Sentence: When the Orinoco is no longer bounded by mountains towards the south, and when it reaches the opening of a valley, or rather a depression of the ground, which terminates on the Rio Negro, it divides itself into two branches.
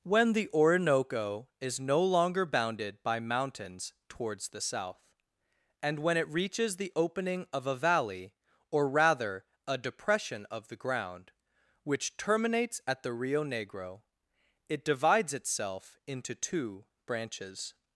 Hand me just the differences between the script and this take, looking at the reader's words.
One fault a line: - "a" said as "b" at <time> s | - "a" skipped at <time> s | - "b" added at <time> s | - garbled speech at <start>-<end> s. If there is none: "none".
- "on" said as "at" at 12.9 s